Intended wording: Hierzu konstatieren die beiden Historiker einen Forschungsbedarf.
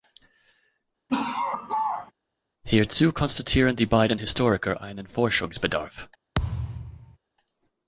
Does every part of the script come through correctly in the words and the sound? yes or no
no